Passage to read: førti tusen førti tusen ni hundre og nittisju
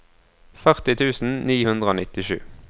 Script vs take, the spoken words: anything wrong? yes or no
yes